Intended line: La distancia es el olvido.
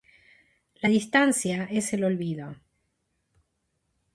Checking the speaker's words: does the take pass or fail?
pass